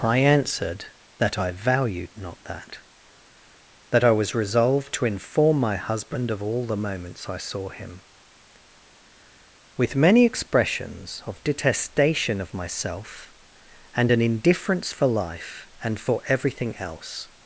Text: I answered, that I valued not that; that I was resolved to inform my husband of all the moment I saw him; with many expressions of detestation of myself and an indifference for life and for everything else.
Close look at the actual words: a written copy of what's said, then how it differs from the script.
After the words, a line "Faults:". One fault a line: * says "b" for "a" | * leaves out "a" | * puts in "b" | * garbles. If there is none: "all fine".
I answered, that I valued not that; that I was resolved to inform my husband of all the moments I saw him; with many expressions of detestation of myself and an indifference for life and for everything else.
Faults:
* says "moments" for "moment"